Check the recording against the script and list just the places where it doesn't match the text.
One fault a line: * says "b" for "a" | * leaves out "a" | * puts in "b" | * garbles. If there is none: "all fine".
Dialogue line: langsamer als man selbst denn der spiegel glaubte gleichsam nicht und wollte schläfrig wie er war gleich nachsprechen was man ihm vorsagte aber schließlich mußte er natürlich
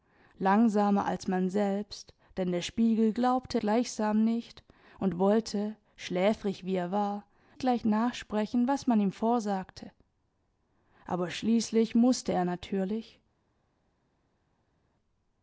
all fine